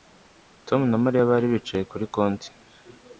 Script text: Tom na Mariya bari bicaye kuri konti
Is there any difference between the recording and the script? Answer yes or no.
no